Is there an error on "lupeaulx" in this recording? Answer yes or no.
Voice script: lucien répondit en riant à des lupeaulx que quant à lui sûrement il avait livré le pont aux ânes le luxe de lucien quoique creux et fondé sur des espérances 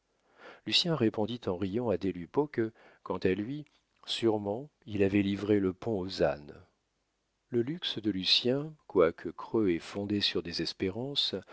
no